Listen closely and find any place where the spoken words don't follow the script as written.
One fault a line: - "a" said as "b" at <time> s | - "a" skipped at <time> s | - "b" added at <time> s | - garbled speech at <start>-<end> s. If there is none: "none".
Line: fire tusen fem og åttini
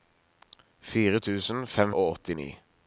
none